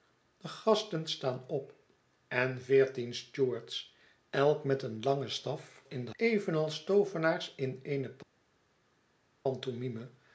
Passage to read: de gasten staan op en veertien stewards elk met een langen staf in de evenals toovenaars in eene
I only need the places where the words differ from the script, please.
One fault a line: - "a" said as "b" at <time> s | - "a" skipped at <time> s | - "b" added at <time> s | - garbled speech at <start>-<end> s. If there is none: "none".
none